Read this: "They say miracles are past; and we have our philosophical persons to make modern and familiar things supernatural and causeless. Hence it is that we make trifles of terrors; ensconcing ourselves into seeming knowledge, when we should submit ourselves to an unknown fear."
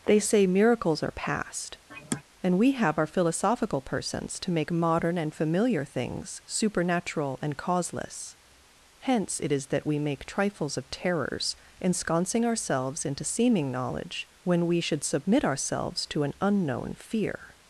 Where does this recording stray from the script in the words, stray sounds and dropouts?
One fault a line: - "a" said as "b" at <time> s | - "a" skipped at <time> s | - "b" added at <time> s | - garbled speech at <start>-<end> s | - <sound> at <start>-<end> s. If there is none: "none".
- sigh at 1.9-2.2 s